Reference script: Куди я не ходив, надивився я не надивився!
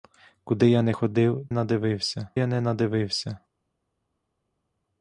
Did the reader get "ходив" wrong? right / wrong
right